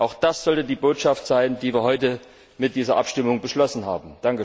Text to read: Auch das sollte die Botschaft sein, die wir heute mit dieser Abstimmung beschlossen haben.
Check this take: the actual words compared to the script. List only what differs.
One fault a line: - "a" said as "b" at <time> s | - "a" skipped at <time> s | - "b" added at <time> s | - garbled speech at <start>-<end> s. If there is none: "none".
none